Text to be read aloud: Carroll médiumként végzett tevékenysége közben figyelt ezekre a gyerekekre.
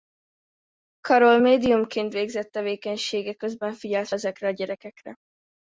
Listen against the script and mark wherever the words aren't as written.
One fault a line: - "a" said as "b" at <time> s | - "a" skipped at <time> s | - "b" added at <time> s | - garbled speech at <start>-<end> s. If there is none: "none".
none